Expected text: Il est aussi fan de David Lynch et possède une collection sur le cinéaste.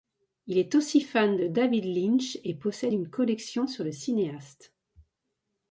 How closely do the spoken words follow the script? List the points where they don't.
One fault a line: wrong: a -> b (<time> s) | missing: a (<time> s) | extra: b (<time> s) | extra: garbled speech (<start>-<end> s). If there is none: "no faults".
no faults